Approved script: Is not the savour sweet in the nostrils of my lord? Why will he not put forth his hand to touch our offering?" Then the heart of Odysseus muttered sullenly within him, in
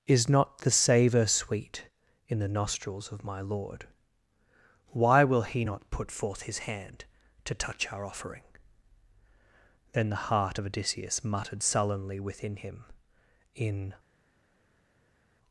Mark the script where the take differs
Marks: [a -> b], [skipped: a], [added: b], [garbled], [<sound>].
Is not the savour sweet in the nostrils of my lord? Why will he not put forth his hand to touch our offering?" Then the heart of Odysseus muttered sullenly within him, in